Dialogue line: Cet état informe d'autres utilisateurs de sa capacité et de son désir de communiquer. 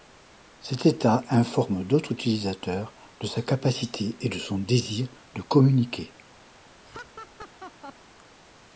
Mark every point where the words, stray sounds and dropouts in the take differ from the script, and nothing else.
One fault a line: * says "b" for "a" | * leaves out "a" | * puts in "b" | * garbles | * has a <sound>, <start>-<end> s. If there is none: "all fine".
* has a laugh, 6.8-7.9 s